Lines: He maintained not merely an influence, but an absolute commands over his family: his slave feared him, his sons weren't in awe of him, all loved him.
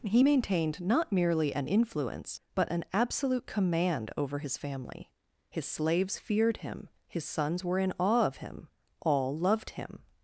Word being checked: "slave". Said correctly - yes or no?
no